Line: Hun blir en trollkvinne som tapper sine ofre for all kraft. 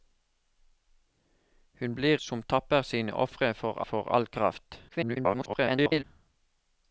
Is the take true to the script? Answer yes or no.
no